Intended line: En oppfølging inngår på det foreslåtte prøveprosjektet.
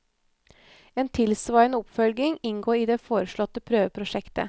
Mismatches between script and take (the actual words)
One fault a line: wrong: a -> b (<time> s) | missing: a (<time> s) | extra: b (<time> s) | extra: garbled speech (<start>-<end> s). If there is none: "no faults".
extra: tilsvarende (1.1 s)
wrong: på -> i (2.8 s)